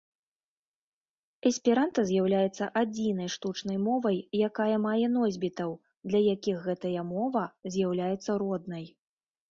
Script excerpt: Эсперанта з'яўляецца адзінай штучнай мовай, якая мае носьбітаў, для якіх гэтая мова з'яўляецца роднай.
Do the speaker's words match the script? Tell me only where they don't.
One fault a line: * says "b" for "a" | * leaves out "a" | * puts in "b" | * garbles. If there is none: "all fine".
all fine